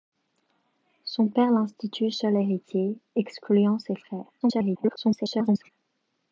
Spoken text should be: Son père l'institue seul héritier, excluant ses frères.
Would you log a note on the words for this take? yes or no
yes